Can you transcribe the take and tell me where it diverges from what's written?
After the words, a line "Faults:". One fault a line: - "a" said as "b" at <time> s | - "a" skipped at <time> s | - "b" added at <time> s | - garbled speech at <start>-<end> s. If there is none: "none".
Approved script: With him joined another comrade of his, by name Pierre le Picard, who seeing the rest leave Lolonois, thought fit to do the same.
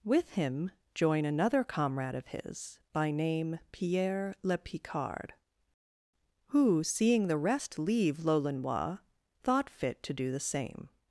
With him join another comrade of his, by name Pierre le Picard, who seeing the rest leave Lolonois, thought fit to do the same.
Faults:
- "joined" said as "join" at 0.9 s